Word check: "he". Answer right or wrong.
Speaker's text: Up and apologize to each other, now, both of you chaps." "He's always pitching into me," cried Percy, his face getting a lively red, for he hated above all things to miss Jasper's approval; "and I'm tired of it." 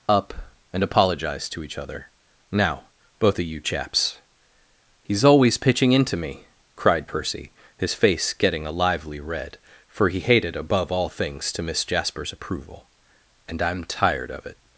right